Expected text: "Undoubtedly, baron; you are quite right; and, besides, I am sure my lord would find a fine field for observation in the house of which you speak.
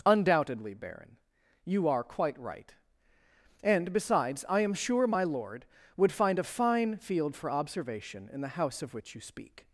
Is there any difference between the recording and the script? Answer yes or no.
no